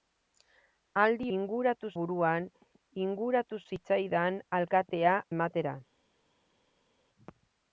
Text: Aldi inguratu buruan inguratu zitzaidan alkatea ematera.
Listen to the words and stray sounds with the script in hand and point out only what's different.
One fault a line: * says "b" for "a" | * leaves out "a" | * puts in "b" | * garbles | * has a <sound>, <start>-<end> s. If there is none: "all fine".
all fine